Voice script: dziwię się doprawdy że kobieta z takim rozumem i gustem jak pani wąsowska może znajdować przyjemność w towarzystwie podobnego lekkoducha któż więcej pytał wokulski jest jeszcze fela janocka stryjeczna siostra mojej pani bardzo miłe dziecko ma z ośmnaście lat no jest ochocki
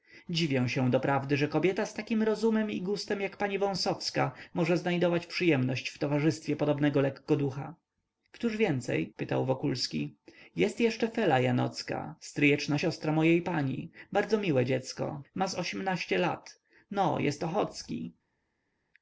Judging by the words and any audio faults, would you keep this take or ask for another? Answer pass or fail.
pass